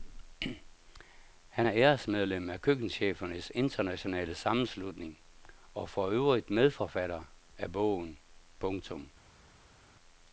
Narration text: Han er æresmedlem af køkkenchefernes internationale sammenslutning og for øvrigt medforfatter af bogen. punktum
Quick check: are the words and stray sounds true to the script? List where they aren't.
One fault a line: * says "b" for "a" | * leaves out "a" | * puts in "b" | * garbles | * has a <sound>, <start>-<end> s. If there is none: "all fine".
all fine